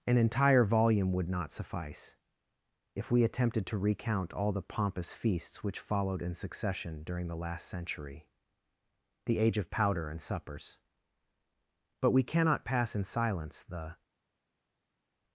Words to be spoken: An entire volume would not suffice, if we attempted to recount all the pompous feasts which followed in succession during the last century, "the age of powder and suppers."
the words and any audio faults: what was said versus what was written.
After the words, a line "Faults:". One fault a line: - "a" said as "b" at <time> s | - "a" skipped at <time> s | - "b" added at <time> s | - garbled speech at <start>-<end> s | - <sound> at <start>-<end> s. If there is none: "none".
An entire volume would not suffice, if we attempted to recount all the pompous feasts which followed in succession during the last century, "the age of powder and suppers." But we cannot pass in silence the
Faults:
- "But we cannot pass in silence the" added at 12.0 s